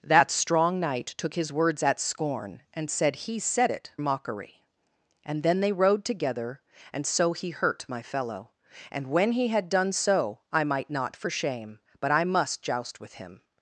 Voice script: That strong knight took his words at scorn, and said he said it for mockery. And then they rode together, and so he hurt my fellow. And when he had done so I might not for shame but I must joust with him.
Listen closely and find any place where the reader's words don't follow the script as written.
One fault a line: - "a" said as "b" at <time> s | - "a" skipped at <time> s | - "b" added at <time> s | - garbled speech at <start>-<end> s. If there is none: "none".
- "for" skipped at 3.9 s